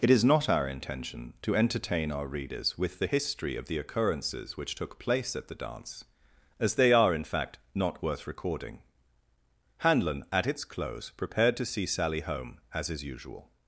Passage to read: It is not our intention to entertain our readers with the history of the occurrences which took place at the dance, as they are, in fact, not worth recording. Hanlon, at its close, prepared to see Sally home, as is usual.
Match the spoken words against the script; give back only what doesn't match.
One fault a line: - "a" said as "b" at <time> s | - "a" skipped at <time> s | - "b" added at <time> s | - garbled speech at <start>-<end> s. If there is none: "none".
none